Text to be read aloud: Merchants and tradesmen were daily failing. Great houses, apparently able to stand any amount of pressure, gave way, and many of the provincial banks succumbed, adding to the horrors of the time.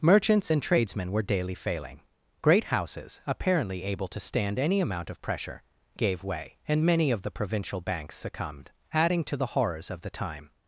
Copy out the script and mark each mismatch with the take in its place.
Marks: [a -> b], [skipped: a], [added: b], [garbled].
Merchants and tradesmen were daily failing. Great houses, apparently able to stand any amount of pressure, gave way, and many of the provincial banks succumbed, adding to the horrors of the time.